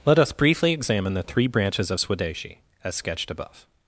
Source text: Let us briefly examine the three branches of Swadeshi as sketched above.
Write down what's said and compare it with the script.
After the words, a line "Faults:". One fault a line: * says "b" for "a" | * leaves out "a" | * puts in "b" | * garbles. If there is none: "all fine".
Let us briefly examine the three branches of Swadeshi as sketched above.
Faults:
all fine